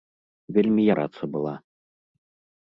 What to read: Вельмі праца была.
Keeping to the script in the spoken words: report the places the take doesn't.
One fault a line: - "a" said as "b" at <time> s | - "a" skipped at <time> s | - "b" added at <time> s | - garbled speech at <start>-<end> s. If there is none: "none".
none